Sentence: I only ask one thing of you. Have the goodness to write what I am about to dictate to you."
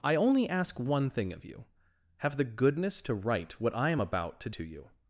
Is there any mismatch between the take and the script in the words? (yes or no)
yes